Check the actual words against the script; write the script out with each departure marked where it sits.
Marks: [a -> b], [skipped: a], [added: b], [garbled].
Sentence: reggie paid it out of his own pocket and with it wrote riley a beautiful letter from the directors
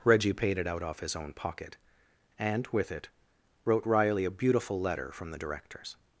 reggie paid it out [of -> off] his own pocket and with it wrote riley a beautiful letter from the directors